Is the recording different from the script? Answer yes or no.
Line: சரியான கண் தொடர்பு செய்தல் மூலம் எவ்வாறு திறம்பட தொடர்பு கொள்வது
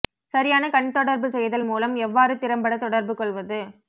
no